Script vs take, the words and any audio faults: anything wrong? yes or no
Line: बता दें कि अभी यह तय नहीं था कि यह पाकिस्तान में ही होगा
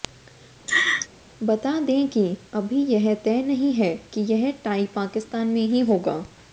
yes